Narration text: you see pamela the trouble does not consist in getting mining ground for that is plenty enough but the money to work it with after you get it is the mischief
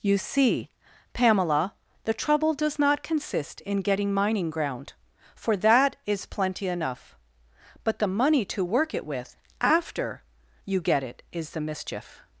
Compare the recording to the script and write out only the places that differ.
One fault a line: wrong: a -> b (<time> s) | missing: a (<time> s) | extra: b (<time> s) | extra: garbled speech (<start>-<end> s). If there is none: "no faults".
no faults